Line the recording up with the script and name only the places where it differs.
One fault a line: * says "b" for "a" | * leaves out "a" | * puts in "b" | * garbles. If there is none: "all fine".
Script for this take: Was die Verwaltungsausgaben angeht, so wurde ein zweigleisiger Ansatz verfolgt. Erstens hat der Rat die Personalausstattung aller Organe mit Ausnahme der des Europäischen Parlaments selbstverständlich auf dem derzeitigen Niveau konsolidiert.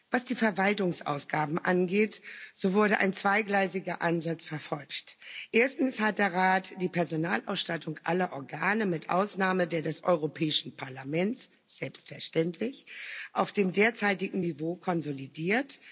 all fine